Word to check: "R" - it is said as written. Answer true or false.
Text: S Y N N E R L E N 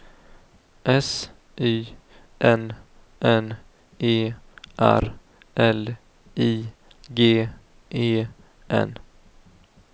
true